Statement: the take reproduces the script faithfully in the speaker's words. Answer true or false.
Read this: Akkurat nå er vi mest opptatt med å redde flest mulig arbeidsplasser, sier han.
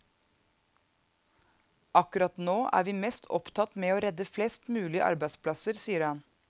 true